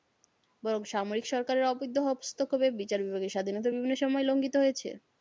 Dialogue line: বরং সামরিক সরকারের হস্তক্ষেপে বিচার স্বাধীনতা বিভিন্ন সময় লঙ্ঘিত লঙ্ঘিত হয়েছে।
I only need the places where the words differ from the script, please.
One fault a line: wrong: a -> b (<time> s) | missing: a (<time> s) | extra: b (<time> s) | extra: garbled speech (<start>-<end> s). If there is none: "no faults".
extra: অবৈধ (1.7 s)
extra: বিভাগের (3.0 s)
missing: লঙ্ঘিত (4.6 s)